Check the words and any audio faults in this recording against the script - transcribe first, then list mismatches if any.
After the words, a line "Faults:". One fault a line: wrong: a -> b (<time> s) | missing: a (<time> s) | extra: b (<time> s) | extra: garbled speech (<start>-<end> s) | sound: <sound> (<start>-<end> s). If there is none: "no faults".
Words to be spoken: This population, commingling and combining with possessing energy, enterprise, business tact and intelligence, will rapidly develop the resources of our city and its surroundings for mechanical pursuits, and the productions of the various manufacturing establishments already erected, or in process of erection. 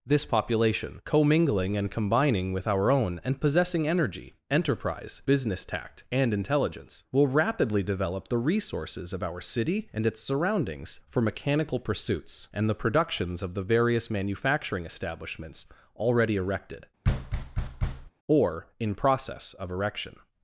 This population, commingling and combining with our own, and possessing energy, enterprise, business tact and intelligence, will rapidly develop the resources of our city and its surroundings for mechanical pursuits, and the productions of the various manufacturing establishments already erected, or in process of erection.
Faults:
extra: our own and (2.7 s)
sound: thud (17.0-18.1 s)